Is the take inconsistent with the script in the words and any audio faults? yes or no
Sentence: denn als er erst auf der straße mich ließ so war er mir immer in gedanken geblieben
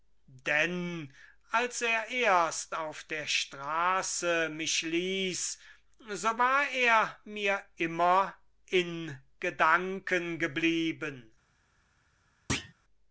yes